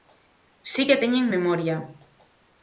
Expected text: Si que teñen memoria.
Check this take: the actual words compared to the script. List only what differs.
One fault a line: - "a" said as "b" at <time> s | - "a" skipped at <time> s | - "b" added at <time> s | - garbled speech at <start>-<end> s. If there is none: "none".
none